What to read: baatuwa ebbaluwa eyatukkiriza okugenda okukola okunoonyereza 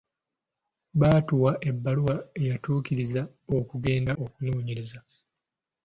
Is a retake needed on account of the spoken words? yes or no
yes